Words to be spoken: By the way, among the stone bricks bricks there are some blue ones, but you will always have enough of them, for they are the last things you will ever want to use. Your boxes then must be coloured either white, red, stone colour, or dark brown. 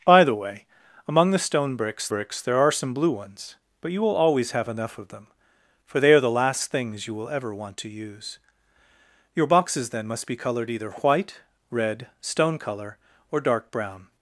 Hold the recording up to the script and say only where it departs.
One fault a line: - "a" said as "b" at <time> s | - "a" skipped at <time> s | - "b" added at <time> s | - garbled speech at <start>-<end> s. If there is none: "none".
none